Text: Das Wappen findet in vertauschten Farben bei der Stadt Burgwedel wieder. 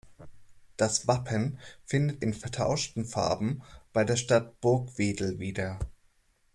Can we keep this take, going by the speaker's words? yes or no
yes